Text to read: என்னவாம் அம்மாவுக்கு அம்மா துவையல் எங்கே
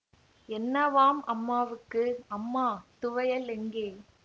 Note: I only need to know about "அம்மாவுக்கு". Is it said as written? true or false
true